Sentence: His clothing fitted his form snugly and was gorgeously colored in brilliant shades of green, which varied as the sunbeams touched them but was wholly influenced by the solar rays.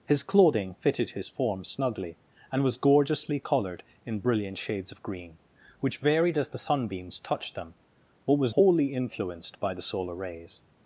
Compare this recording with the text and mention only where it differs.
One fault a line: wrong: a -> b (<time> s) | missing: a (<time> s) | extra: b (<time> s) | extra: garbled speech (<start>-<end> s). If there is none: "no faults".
no faults